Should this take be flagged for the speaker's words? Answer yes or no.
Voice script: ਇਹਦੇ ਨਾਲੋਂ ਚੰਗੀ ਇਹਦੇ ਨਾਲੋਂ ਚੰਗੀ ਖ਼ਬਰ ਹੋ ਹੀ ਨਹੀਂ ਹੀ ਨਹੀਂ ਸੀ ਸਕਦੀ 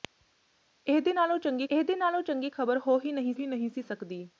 no